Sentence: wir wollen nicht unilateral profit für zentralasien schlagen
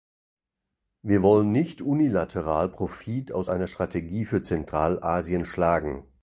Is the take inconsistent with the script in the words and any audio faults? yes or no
yes